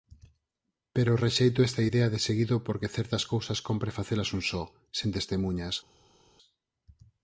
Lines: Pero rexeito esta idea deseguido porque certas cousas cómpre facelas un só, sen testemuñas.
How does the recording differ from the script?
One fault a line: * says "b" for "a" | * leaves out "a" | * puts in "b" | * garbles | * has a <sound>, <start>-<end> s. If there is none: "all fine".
all fine